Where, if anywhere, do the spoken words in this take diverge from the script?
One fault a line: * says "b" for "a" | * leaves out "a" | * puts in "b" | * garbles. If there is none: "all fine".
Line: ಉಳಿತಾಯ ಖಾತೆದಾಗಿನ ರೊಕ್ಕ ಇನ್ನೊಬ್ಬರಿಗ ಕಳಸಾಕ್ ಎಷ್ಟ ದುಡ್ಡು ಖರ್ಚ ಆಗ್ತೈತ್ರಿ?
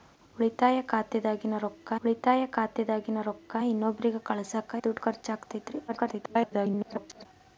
* puts in "ಉಳಿತಾಯ ಖಾತೆದಾಗಿನ ರೊಕ್ಕ"
* leaves out "ಎಷ್ಟ"
* garbles